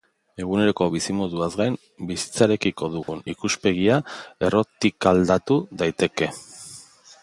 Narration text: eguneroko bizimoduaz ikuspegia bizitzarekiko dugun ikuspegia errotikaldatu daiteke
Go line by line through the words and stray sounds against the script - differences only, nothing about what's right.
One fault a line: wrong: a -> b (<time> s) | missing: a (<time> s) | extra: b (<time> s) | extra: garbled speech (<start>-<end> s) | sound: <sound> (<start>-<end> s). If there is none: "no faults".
wrong: ikuspegia -> gain (1.6 s)
sound: dropout (3.0-3.1 s)